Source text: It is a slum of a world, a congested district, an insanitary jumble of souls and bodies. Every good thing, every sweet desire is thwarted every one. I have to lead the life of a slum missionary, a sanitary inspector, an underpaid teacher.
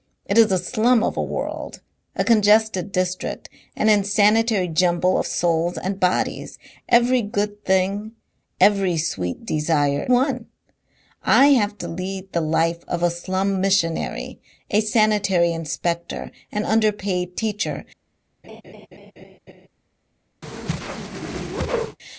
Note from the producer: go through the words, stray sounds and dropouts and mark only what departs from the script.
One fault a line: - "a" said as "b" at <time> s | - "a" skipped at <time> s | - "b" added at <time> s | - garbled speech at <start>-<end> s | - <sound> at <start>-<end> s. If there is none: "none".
- "is thwarted every" skipped at 10.1 s
- laugh at 18.4-19.7 s
- whoosh at 20.4-22.0 s